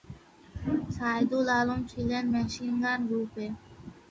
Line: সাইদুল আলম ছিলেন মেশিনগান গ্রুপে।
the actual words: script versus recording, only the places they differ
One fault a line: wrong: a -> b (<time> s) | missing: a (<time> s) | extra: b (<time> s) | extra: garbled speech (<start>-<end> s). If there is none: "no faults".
no faults